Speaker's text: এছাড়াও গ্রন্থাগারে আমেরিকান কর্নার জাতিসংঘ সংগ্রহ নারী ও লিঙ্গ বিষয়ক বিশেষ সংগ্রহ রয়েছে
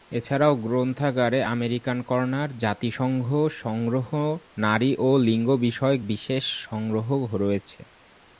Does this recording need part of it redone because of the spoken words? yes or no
no